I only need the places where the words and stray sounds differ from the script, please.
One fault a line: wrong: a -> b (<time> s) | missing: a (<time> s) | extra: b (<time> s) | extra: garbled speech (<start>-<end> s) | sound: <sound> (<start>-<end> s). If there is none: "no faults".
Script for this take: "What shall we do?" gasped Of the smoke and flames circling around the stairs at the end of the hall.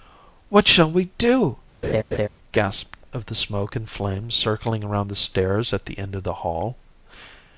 sound: laugh (1.8-2.3 s)